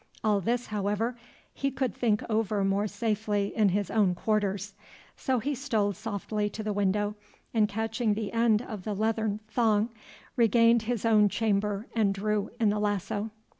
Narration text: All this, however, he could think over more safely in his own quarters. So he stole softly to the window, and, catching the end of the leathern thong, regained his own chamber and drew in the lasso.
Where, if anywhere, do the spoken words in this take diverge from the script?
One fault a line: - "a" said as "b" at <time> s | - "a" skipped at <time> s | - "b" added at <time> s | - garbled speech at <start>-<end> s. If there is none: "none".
none